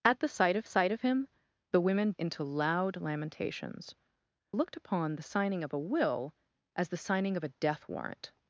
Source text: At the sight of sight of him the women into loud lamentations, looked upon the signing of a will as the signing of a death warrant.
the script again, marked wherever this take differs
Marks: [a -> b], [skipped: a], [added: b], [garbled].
At the sight of sight of him the women into loud lamentations, looked upon the signing of a will as the signing of a death warrant.